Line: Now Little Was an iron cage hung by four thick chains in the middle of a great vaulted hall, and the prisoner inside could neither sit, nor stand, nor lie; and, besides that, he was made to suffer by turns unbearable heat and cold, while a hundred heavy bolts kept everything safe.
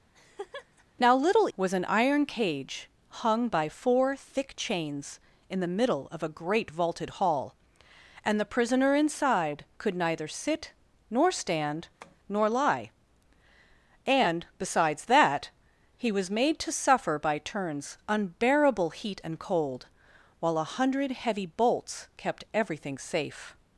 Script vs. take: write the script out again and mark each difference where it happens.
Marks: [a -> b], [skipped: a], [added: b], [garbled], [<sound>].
[laugh] Now Little Was an iron cage hung by four thick chains in the middle of a great vaulted hall, and the prisoner inside could neither sit, nor stand, [tap] nor lie; and, besides that, he was made to suffer by turns unbearable heat and cold, while a hundred heavy bolts kept everything safe.